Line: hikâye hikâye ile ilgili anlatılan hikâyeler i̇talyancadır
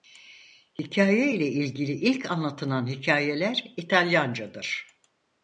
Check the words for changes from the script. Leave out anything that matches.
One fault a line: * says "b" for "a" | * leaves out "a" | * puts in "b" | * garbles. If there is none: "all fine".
* leaves out "hikâye"
* puts in "ilk"